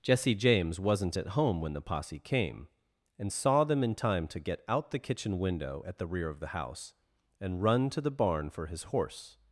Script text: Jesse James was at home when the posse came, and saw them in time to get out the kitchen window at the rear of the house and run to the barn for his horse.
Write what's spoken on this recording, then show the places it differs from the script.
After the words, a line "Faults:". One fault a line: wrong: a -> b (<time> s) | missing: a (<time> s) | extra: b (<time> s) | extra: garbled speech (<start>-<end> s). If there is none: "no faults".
Jesse James wasn't at home when the posse came, and saw them in time to get out the kitchen window at the rear of the house and run to the barn for his horse.
Faults:
wrong: was -> wasn't (0.8 s)